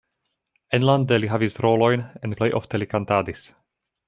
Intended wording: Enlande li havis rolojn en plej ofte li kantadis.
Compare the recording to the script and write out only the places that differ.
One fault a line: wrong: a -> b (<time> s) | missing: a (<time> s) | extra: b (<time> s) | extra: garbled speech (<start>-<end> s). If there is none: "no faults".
no faults